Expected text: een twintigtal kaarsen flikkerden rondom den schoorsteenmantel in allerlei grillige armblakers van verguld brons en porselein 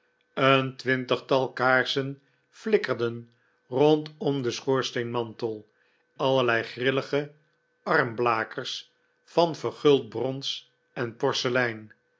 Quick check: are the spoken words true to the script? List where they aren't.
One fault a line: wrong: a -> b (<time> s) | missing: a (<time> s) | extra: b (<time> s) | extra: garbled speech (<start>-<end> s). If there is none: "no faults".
missing: in (5.7 s)